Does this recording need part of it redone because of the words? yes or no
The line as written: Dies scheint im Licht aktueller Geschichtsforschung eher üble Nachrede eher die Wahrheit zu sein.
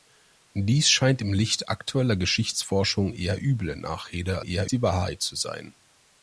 no